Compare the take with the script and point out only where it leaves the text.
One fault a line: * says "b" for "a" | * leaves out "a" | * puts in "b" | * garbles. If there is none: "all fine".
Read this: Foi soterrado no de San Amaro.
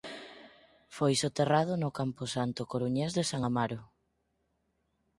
* puts in "camposanto coruñés"